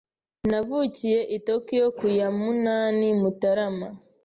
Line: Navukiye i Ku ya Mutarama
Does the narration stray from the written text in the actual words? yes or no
yes